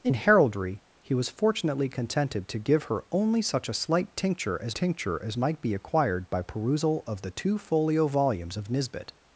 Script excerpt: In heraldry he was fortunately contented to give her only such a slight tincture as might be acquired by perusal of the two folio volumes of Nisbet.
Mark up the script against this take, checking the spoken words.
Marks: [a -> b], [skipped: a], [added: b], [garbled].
In heraldry he was fortunately contented to give her only such a slight tincture as [added: tincture as] might be acquired by perusal of the two folio volumes of Nisbet.